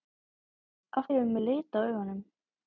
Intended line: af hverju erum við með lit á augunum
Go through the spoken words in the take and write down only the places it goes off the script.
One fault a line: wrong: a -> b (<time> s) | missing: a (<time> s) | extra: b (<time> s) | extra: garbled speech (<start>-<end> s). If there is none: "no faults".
missing: hverju (1.1 s)